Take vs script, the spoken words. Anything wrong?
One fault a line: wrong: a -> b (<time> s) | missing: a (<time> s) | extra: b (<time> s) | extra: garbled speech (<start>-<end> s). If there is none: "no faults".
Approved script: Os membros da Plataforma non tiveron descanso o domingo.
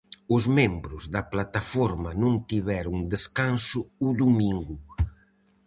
no faults